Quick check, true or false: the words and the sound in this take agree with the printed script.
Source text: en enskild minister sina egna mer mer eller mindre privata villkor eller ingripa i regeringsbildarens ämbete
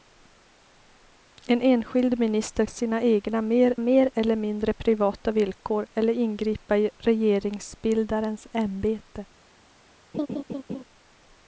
false